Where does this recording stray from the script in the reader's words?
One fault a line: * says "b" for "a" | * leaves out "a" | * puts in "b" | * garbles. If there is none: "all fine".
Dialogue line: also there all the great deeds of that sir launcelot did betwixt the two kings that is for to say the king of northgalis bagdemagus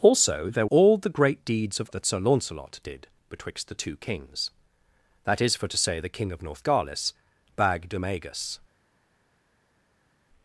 all fine